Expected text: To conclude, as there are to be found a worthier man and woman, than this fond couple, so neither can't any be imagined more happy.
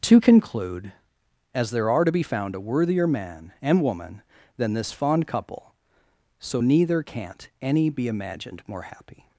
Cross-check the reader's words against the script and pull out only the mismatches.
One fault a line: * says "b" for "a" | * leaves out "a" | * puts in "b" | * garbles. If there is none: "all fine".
all fine